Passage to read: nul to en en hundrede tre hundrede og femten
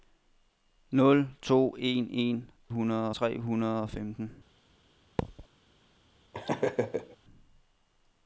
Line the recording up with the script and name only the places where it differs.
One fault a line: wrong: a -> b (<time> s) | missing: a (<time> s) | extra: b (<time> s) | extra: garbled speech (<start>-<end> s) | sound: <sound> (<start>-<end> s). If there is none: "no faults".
sound: thud (5.2-5.5 s)
sound: laugh (6.3-7.2 s)